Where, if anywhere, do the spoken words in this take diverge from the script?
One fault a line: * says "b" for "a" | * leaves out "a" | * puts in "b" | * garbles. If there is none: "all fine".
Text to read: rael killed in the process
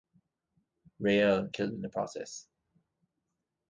all fine